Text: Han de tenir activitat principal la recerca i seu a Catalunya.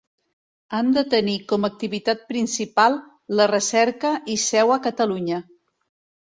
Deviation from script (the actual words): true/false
true